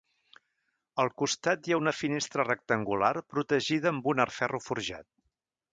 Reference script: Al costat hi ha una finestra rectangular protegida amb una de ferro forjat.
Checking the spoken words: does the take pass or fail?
pass